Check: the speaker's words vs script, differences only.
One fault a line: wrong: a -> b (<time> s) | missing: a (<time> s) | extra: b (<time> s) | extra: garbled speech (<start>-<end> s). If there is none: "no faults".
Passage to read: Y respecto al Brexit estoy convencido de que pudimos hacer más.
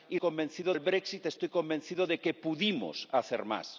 wrong: respecto -> convencido (0.2 s)